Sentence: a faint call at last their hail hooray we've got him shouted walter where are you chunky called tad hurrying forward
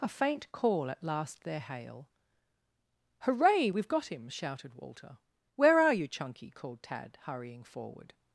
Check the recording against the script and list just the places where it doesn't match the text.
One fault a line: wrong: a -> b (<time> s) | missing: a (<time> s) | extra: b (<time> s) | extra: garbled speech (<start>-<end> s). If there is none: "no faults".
no faults